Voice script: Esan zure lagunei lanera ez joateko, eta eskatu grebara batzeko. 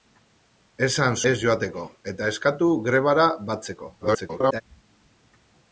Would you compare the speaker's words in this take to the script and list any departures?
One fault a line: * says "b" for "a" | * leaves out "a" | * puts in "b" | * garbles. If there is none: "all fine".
* leaves out "zure lagunei lanera"
* garbles